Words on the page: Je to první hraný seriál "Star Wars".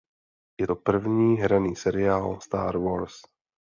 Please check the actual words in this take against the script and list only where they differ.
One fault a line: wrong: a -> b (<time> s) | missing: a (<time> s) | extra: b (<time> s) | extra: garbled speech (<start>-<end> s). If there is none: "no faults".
no faults